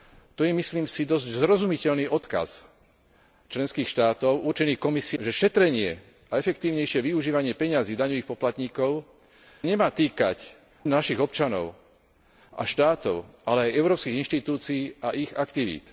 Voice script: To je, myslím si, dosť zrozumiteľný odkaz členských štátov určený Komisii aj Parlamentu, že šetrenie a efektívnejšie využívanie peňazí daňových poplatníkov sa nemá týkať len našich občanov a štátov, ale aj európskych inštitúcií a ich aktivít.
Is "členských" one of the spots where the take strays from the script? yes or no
no